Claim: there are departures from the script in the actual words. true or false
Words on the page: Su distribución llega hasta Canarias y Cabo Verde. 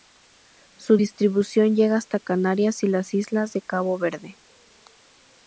true